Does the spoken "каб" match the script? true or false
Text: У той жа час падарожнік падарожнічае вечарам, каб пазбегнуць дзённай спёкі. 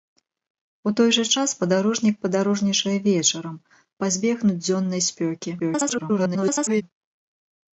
false